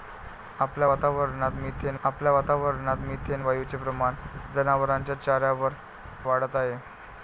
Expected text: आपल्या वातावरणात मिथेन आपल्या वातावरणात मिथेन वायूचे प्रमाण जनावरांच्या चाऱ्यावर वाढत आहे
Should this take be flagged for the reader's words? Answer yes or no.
no